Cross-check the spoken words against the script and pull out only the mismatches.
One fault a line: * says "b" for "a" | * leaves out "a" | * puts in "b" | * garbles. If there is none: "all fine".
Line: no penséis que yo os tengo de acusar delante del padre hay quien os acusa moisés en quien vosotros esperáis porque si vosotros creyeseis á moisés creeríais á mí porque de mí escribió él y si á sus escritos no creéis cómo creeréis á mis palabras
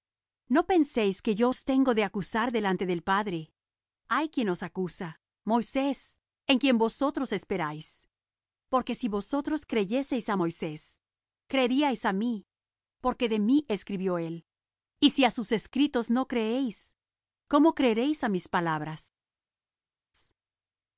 all fine